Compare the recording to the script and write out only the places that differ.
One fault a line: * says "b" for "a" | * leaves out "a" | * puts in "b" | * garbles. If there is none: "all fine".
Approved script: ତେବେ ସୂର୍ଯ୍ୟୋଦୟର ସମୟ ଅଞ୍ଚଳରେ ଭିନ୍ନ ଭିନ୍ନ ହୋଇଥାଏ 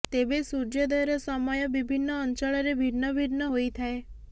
* puts in "ବିଭିନ୍ନ"